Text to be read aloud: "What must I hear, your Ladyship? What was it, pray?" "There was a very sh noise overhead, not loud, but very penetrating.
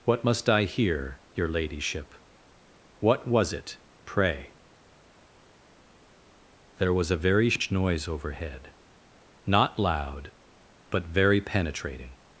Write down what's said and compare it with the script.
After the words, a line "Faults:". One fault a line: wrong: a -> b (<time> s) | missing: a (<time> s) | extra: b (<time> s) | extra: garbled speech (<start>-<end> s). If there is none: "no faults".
"What must I hear, your Ladyship? What was it, pray?" "There was a very sh noise overhead, not loud, but very penetrating.
Faults:
no faults